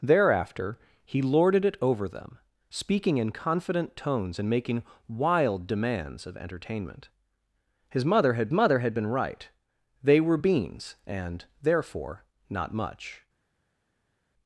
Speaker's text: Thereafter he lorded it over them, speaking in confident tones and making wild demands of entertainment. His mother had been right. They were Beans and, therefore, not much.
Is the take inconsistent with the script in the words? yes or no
yes